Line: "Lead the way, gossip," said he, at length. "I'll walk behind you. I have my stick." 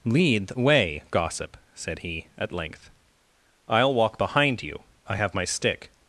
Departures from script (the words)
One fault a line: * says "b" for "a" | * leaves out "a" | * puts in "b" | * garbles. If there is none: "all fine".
all fine